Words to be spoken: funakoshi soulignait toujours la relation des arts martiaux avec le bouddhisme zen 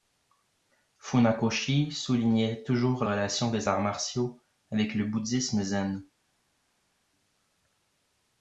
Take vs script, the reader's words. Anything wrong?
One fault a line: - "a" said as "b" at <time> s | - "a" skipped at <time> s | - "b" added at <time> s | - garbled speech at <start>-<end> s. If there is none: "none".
- "la" skipped at 3.0 s